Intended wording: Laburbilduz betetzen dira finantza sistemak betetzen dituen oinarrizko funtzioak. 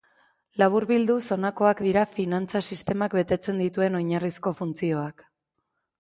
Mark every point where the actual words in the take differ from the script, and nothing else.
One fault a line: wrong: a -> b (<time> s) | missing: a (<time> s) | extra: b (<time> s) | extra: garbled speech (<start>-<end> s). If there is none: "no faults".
wrong: betetzen -> honakoak (1.4 s)